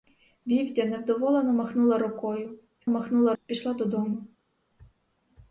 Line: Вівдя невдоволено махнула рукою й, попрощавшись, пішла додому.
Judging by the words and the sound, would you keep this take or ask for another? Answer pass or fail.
fail